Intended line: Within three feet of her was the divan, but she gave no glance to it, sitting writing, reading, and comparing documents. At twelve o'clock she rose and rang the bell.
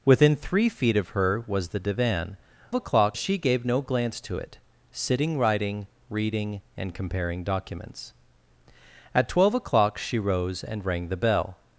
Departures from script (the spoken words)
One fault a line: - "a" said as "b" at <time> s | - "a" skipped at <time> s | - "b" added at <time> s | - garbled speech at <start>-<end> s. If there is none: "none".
- "but" said as "o'clock" at 2.7 s